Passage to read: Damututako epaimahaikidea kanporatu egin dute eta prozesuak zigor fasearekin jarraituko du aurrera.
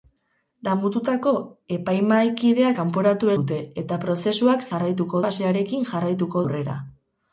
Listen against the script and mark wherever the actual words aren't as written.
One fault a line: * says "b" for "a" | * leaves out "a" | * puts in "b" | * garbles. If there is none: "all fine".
* leaves out "egin"
* says "jarraituko" for "zigor"
* leaves out "du"